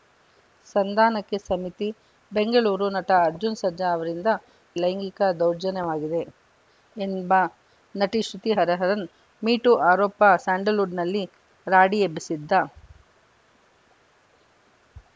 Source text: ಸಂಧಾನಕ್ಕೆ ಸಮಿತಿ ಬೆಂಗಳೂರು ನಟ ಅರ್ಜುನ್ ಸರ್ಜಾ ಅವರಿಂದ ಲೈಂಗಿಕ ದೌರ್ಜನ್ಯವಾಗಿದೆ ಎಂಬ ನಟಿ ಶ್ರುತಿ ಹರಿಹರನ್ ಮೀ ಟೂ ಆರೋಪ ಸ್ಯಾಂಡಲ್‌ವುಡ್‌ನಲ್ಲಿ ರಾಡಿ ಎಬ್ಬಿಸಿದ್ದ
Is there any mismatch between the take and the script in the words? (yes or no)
no